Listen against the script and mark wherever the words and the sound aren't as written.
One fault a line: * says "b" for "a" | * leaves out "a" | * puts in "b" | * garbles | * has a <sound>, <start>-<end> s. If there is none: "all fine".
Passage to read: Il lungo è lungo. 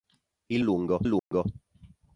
* has a dropout, 1.2-1.3 s